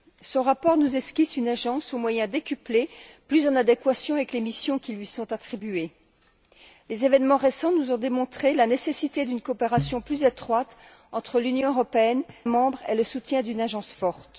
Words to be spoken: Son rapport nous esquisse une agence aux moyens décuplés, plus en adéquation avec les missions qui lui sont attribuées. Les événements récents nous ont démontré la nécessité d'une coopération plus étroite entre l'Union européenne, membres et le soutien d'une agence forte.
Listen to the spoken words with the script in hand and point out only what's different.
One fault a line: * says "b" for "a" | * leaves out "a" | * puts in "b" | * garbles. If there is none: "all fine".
all fine